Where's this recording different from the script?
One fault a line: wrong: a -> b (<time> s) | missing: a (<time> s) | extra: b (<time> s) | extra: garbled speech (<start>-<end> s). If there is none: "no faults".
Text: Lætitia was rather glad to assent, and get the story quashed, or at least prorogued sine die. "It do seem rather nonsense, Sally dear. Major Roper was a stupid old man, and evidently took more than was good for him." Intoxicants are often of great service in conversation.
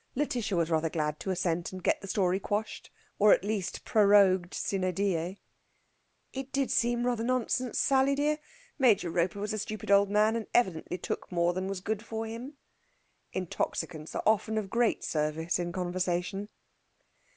wrong: do -> did (6.5 s)